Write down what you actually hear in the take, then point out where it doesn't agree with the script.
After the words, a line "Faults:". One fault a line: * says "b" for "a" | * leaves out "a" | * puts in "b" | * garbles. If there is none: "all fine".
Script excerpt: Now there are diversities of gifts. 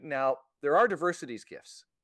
Now there are diversities gifts.
Faults:
* leaves out "of"